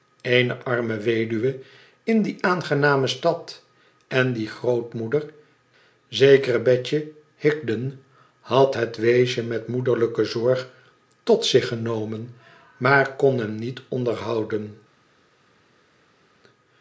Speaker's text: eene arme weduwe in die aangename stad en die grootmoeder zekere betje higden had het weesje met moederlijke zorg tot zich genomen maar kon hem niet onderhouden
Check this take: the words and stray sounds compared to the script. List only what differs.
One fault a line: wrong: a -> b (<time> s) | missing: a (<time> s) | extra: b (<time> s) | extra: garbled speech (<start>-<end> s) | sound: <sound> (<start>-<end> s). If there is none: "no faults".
no faults